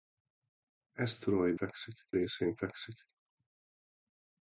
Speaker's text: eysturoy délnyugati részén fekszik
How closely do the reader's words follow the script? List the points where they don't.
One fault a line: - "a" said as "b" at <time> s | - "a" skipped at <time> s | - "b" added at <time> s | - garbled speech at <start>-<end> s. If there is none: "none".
- "délnyugati" said as "fekszik" at 1.5 s